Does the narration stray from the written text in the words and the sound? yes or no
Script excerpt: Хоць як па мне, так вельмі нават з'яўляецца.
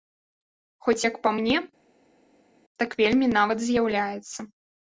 no